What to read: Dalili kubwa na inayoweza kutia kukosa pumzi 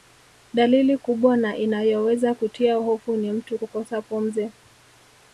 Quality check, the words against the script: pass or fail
fail